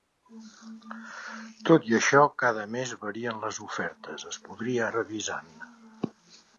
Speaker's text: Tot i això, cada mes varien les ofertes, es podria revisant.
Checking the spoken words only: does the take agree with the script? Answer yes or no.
yes